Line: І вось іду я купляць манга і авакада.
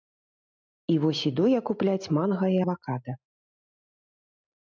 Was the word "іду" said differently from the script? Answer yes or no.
no